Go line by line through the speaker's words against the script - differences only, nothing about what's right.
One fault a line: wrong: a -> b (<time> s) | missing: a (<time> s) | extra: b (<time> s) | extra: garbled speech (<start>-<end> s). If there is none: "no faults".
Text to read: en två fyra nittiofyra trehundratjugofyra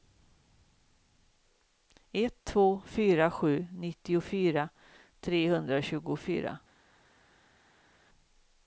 wrong: en -> ett (2.1 s)
extra: sju (3.3 s)